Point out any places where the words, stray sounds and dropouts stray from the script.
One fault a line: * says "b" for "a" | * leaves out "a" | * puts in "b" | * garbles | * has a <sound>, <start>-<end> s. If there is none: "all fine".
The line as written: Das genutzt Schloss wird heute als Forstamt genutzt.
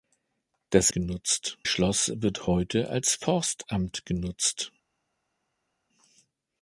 all fine